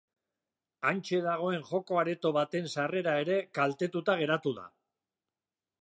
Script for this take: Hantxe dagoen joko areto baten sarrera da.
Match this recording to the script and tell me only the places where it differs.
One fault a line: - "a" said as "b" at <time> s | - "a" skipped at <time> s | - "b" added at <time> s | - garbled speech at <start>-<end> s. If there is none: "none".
- "ere kaltetuta geratu" added at 3.3 s